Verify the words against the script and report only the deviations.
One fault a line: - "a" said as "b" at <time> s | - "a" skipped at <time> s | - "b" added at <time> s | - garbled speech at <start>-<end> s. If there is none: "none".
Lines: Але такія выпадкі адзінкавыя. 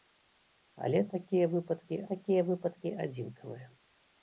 - "такія выпадкі" added at 2.1 s